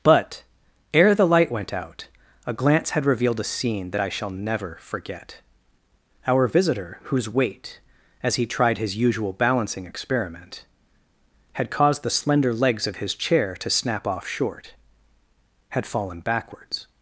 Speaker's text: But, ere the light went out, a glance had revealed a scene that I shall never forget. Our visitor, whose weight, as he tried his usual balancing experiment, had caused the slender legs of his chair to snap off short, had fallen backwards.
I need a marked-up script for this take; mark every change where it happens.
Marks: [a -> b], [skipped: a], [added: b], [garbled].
But, ere the light went out, a glance had revealed a scene that I shall never forget. Our visitor, whose weight, as he tried his usual balancing experiment, had caused the slender legs of his chair to snap off short, had fallen backwards.